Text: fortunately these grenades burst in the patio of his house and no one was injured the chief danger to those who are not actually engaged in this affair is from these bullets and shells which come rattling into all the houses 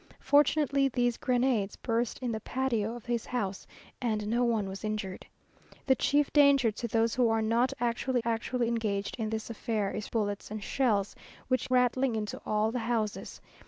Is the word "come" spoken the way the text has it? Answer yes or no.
no